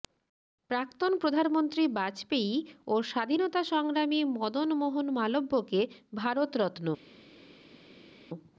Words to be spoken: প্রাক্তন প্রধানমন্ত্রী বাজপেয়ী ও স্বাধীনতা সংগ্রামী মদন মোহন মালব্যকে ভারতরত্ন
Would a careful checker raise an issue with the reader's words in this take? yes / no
no